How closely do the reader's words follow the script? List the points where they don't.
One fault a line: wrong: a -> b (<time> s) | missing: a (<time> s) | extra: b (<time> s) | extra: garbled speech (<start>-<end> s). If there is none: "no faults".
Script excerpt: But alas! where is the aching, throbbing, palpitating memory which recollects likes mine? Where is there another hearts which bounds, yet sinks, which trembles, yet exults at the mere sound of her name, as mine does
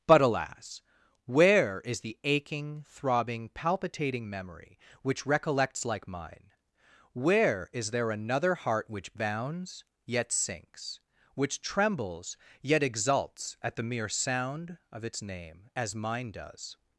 wrong: likes -> like (5.8 s)
wrong: hearts -> heart (8.6 s)
wrong: her -> its (15.0 s)